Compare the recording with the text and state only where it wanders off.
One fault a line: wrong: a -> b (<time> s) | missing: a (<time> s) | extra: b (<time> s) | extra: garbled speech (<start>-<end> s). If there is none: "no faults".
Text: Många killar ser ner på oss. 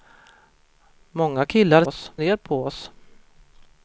wrong: ser -> oss (1.9 s)